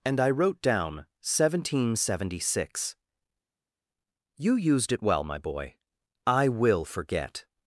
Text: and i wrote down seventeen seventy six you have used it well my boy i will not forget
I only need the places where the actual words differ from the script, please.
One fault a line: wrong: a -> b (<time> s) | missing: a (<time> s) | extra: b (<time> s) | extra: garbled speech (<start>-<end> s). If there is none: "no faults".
missing: have (4.5 s)
missing: not (6.8 s)